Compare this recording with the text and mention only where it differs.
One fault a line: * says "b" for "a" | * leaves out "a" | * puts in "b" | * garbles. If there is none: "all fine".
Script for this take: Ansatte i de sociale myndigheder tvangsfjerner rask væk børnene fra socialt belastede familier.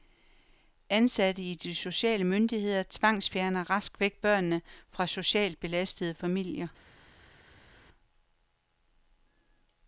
all fine